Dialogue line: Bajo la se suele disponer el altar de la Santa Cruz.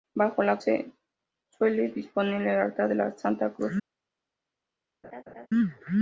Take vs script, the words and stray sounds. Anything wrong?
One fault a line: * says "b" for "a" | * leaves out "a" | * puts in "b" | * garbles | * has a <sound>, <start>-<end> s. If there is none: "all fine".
* has a laugh, 5.0-5.5 s